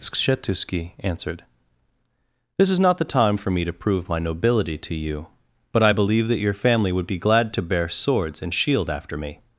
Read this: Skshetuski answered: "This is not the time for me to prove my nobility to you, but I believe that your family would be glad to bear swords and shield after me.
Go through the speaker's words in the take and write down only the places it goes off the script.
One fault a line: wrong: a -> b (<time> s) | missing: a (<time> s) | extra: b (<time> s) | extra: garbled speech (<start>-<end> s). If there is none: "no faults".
no faults